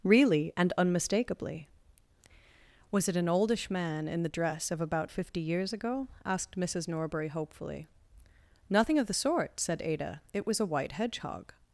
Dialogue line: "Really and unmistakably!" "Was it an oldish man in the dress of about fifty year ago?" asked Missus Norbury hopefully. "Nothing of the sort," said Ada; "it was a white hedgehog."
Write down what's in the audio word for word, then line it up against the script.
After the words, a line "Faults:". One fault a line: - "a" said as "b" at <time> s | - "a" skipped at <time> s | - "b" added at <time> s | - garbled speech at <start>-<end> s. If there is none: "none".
"Really and unmistakably!" "Was it an oldish man in the dress of about fifty years ago?" asked Missus Norbury hopefully. "Nothing of the sort," said Ada; "it was a white hedgehog."
Faults:
- "year" said as "years" at 5.4 s